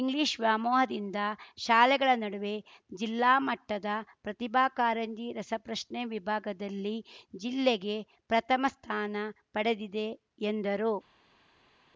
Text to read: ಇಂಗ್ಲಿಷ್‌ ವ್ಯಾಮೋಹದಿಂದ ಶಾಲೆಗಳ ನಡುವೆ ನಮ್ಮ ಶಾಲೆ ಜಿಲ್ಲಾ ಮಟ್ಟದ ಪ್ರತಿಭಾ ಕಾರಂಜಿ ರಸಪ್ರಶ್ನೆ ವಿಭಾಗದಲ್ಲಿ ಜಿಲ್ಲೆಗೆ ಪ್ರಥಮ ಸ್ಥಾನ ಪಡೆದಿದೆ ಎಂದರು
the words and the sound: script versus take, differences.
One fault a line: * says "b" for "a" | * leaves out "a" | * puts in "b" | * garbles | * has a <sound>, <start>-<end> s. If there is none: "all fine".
* leaves out "ನಮ್ಮ ಶಾಲೆ"